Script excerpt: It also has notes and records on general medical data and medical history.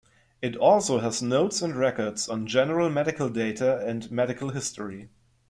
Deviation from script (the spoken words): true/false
false